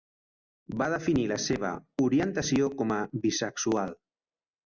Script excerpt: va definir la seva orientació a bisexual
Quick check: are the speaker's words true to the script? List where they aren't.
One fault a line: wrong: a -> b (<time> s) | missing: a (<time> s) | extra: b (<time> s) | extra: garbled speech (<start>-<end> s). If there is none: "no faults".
extra: com (2.8 s)